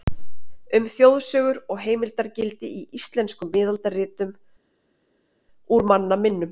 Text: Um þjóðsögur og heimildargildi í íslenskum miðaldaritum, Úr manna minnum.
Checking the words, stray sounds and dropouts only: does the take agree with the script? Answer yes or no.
yes